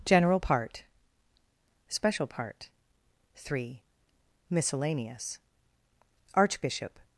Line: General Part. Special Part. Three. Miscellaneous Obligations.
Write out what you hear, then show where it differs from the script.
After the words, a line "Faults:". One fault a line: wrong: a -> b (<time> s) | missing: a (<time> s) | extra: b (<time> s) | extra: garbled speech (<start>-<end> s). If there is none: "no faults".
General Part. Special Part. Three. Miscellaneous Archbishop.
Faults:
wrong: Obligations -> Archbishop (6.3 s)